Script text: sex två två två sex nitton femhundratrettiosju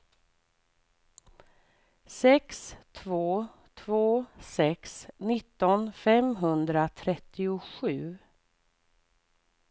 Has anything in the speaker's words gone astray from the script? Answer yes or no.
yes